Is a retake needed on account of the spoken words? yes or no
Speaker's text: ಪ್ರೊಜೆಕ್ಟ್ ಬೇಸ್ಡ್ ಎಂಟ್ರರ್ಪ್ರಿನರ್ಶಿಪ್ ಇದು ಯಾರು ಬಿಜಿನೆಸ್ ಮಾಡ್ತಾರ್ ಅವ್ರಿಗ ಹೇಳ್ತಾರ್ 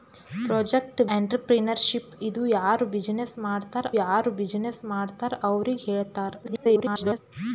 yes